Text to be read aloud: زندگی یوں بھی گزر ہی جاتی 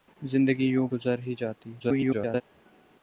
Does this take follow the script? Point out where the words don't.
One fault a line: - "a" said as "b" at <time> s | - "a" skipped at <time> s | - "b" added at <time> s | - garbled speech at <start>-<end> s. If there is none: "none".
- "بھی" skipped at 0.9 s
- garbled speech at 1.8-2.4 s